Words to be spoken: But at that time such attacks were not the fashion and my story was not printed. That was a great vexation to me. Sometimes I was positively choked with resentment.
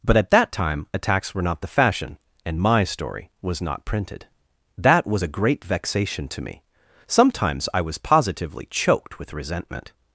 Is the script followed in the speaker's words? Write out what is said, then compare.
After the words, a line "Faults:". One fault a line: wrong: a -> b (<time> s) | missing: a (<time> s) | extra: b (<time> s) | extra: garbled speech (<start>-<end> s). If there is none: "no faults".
But at that time attacks were not the fashion and my story was not printed. That was a great vexation to me. Sometimes I was positively choked with resentment.
Faults:
missing: such (0.9 s)